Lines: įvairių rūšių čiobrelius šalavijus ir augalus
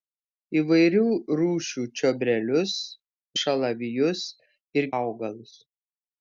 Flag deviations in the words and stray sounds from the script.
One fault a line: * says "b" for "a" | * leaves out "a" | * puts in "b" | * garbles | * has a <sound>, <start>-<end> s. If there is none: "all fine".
all fine